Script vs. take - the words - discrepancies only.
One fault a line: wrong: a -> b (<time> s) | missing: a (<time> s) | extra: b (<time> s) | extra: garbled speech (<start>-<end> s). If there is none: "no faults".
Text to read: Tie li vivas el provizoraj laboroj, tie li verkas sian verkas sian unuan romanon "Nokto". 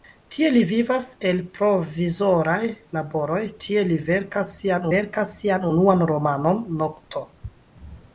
no faults